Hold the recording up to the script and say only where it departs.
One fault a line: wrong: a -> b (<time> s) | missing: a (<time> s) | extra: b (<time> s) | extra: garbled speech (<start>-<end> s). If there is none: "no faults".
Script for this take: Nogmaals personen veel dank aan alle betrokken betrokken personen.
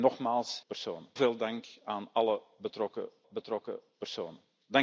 no faults